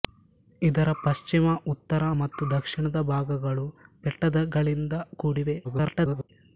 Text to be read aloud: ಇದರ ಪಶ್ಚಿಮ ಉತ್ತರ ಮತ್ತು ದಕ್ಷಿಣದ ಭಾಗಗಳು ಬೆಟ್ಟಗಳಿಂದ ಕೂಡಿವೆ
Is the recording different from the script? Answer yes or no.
yes